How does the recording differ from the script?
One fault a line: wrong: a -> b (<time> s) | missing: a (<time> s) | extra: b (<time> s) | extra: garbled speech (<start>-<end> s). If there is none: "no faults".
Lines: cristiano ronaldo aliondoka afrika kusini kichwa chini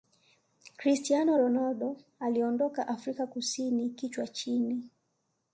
no faults